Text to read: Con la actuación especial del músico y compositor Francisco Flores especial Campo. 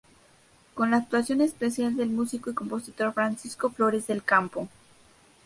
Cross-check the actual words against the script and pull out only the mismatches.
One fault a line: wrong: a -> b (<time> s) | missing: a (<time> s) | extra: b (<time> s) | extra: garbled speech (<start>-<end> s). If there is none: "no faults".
wrong: especial -> del (4.1 s)